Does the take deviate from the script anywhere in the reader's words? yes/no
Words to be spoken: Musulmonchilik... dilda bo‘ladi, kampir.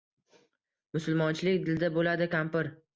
no